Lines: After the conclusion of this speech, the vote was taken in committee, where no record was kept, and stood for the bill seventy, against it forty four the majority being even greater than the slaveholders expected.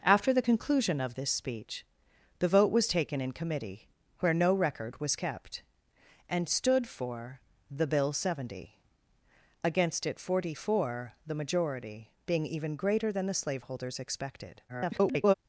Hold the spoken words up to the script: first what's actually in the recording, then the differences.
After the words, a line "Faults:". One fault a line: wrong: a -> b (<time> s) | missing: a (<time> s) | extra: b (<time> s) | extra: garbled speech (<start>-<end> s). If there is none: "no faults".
After the conclusion of this speech, the vote was taken in committee, where no record was kept, and stood for the bill seventy, against it forty four the majority being even greater than the slaveholders expected. [garbled]
Faults:
extra: garbled speech (14.7-15.3 s)